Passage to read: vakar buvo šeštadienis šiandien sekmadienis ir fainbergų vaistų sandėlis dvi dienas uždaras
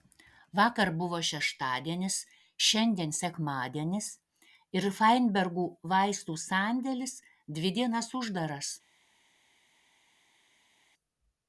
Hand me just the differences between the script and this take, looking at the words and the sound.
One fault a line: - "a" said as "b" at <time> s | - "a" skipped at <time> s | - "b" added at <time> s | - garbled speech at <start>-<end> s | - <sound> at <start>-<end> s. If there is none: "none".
none